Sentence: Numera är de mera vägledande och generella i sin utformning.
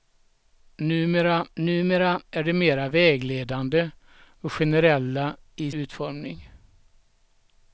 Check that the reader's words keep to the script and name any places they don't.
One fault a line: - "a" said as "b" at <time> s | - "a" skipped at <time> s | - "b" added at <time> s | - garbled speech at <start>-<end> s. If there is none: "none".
- "numera" added at 1.6 s
- "sin" skipped at 5.7 s